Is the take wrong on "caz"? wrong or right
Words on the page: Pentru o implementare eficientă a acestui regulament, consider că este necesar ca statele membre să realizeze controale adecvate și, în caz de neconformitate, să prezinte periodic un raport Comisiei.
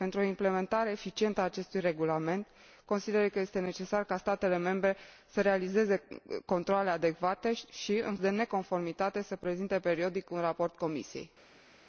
wrong